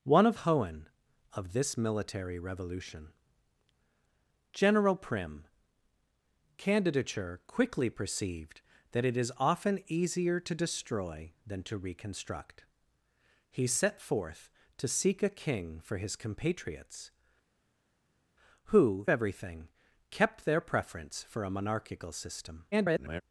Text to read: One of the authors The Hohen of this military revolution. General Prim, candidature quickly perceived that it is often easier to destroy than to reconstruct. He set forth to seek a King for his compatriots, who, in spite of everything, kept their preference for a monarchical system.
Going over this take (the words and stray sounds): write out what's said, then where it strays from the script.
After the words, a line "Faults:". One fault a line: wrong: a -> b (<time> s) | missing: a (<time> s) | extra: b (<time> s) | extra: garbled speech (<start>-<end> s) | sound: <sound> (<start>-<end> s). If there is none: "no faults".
One of Hohen of this military revolution. General Prim, candidature quickly perceived that it is often easier to destroy than to reconstruct. He set forth to seek a King for his compatriots, who, everything, kept their preference for a monarchical system. [garbled]
Faults:
missing: the authors The (0.4 s)
missing: in spite of (19.1 s)
extra: garbled speech (22.7-23.2 s)